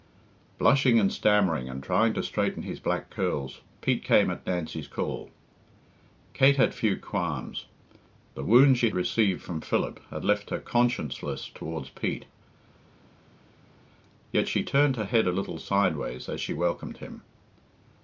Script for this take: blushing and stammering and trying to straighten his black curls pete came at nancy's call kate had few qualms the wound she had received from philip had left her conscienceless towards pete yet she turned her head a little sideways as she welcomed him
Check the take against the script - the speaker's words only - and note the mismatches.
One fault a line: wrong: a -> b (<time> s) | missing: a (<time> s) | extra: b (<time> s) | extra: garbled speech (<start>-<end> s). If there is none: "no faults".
missing: had (8.9 s)